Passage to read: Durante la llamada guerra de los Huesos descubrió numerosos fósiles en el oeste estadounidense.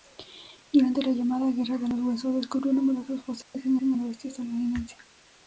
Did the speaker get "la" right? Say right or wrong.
right